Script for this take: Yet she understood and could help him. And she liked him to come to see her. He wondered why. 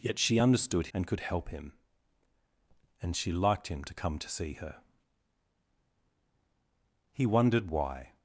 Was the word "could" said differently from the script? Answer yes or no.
no